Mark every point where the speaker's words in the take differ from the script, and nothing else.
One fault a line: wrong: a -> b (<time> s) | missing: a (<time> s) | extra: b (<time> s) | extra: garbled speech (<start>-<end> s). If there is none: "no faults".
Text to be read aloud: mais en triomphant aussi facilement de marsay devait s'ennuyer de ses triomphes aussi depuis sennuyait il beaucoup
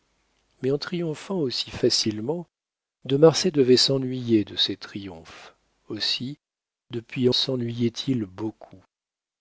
no faults